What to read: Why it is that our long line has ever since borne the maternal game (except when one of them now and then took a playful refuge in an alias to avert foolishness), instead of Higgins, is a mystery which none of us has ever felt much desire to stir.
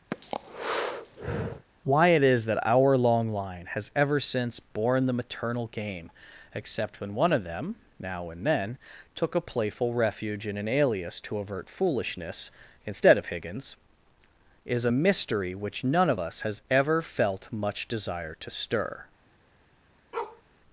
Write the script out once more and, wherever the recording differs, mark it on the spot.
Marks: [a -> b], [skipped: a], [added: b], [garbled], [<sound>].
[breath] Why it is that our long line has ever since borne the maternal game (except when one of them now and then took a playful refuge in an alias to avert foolishness), instead of Higgins, is a mystery which none of us has ever felt much desire to stir. [bark]